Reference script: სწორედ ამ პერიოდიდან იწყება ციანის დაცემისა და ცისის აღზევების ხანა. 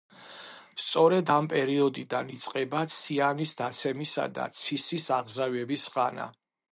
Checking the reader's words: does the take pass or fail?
pass